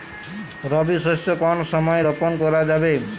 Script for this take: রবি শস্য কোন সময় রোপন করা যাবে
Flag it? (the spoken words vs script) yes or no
no